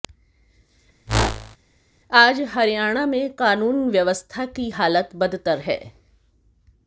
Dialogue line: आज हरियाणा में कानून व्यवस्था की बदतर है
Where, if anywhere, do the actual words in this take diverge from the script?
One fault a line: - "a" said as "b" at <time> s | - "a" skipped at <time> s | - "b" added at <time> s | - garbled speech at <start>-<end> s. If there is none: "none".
- "हालत" added at 4.7 s